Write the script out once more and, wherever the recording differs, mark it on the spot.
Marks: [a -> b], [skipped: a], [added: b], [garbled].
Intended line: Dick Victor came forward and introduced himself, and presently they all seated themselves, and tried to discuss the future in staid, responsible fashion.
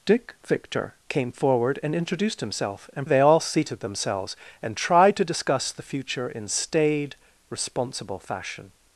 Dick Victor came forward and introduced himself, and [skipped: presently] they all seated themselves, and tried to discuss the future in staid, responsible fashion.